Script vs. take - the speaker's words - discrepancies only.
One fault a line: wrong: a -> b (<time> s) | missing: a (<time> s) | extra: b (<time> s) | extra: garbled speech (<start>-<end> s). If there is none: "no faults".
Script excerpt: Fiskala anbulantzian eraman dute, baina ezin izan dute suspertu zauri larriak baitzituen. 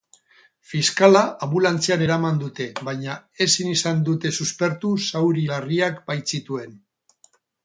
no faults